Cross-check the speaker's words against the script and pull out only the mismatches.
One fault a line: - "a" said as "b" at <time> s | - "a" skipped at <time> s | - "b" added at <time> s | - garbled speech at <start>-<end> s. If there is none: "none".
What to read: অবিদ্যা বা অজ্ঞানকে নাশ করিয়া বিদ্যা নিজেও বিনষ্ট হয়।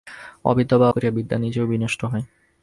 - "অজ্ঞানকে নাশ" skipped at 0.9 s